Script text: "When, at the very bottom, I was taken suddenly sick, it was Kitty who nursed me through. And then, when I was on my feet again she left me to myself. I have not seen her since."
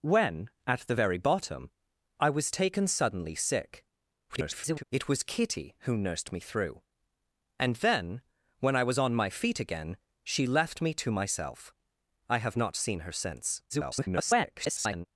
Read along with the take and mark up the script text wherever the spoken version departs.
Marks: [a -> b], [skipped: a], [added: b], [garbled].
"When, at the very bottom, I was taken suddenly sick, [garbled] it was Kitty who nursed me through. And then, when I was on my feet again she left me to myself. I have not seen her since." [garbled]